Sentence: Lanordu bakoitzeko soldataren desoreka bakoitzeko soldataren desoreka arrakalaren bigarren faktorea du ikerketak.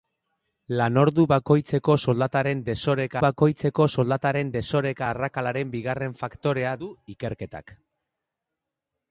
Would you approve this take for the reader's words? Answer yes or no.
yes